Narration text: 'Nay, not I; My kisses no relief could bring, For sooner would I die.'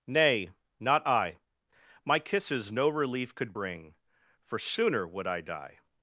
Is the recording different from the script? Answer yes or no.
no